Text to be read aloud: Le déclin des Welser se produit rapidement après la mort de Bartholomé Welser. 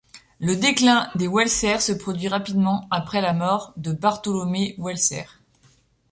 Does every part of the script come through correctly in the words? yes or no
yes